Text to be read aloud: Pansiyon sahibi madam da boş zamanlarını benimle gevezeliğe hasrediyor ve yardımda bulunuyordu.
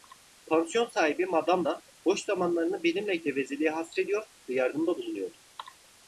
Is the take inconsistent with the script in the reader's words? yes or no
no